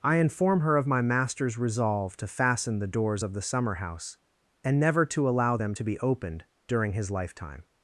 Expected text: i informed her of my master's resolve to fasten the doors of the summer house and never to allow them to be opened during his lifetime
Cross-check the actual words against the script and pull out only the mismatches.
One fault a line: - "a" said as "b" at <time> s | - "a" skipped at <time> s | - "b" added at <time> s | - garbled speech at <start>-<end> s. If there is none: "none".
- "informed" said as "inform" at 0.2 s